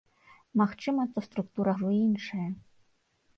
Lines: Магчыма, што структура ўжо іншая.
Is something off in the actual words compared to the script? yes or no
no